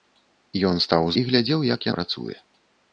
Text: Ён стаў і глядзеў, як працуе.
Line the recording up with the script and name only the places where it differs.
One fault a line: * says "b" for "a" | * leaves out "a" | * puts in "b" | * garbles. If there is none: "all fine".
all fine